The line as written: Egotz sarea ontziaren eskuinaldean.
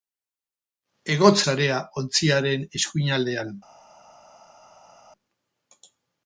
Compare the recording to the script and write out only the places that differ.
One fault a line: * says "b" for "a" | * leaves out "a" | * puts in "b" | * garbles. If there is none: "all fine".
all fine